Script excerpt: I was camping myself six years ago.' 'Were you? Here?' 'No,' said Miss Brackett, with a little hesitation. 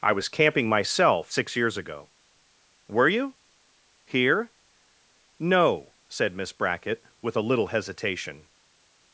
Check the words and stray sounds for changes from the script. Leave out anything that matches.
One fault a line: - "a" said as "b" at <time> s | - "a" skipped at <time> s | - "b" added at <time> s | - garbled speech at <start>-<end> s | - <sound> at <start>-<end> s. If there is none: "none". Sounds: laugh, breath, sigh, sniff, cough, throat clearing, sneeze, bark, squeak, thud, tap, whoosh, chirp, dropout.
none